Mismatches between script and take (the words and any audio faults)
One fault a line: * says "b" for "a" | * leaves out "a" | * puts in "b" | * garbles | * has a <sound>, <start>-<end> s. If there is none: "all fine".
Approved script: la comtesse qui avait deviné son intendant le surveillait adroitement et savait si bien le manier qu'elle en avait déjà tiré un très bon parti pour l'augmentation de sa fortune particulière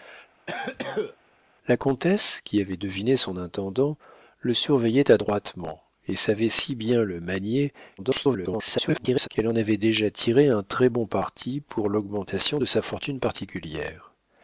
* has a cough, 0.5-1.2 s
* garbles